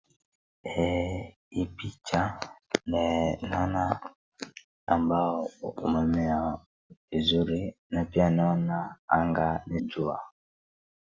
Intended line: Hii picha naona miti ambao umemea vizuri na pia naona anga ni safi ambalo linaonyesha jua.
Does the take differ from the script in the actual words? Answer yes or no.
yes